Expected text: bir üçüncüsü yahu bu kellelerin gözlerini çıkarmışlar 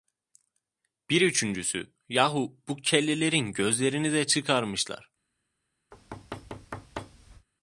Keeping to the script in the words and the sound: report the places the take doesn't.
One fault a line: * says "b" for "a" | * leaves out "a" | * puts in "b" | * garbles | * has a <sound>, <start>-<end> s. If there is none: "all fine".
* puts in "de"
* has a thud, 5.9-7.5 s